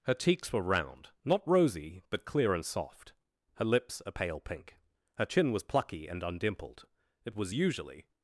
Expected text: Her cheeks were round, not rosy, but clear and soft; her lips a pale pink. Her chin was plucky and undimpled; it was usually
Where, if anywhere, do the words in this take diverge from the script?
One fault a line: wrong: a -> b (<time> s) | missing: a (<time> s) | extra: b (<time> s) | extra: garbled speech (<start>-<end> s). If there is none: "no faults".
no faults